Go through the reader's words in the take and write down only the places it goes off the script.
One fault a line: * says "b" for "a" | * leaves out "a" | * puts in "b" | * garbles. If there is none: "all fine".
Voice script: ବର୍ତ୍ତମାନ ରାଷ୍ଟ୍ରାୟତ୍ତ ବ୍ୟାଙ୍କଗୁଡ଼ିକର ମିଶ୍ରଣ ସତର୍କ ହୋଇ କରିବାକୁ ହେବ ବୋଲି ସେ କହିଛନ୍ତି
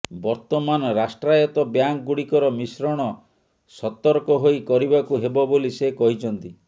all fine